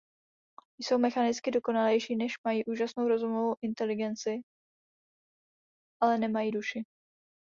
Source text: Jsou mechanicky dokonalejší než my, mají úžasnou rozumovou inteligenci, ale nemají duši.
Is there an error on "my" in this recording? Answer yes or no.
yes